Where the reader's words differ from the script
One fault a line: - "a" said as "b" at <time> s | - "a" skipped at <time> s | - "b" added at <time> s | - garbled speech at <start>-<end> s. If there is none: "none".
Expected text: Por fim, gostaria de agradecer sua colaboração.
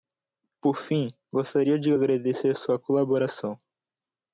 none